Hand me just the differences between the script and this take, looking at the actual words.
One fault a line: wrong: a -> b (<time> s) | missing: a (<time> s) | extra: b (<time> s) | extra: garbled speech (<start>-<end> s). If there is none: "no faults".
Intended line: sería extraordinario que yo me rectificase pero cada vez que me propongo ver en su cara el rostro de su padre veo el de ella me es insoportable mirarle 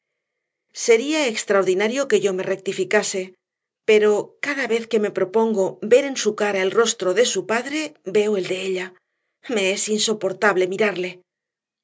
no faults